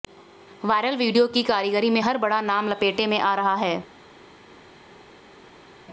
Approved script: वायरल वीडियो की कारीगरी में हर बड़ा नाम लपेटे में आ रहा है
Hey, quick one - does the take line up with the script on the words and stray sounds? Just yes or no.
yes